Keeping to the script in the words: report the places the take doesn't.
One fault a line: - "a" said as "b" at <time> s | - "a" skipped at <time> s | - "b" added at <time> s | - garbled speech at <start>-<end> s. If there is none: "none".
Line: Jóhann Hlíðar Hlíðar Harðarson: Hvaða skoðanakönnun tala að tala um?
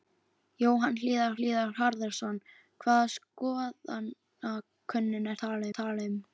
none